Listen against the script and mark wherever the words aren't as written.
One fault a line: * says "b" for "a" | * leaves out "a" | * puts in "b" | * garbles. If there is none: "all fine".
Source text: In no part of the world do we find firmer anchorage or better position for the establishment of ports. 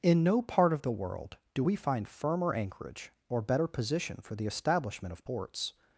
all fine